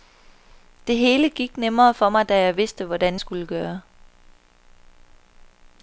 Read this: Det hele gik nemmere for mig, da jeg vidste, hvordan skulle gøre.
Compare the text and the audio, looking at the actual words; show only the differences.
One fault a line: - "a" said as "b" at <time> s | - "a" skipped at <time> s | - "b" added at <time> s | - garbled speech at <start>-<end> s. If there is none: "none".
none